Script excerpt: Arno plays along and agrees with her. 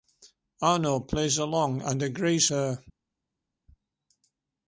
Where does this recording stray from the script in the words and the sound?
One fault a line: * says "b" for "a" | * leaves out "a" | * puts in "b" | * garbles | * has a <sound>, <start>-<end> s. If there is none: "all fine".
* leaves out "with"